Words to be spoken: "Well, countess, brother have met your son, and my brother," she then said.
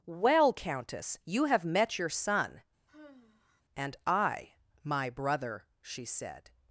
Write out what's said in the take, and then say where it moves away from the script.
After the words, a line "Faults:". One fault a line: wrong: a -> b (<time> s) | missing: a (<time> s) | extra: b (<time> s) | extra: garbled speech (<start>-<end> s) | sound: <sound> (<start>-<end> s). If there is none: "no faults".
"Well, countess, you have met your son, and I my brother," she said.
Faults:
wrong: brother -> you (1.2 s)
sound: sigh (2.9-3.6 s)
extra: I (4.1 s)
missing: then (6.0 s)